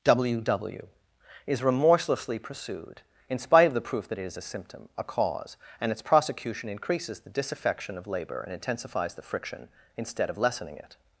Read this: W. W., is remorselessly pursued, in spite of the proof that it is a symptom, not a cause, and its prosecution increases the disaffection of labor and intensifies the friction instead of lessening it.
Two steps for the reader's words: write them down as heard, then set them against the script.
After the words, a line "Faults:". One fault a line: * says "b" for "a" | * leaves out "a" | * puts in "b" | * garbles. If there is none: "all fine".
W. W., is remorselessly pursued, in spite of the proof that it is a symptom, a cause, and its prosecution increases the disaffection of labor and intensifies the friction instead of lessening it.
Faults:
* leaves out "not"